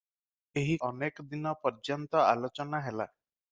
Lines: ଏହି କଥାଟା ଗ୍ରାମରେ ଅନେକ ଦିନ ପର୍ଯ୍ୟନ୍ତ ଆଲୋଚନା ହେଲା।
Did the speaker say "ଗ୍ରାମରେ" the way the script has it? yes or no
no